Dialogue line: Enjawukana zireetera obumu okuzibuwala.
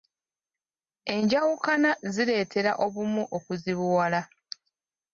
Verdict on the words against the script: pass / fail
pass